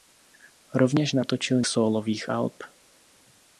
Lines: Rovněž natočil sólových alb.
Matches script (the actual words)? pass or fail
pass